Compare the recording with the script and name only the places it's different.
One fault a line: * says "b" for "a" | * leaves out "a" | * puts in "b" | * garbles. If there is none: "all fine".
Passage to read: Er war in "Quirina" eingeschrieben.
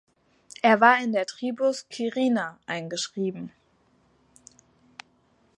* puts in "der Tribus"